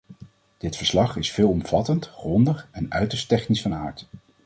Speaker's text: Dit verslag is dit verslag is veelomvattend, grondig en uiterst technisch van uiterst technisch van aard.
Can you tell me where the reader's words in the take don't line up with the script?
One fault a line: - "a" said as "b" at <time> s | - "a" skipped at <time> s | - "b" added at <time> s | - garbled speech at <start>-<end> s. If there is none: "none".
- "dit verslag is" skipped at 1.3 s
- "uiterst technisch van" skipped at 3.7 s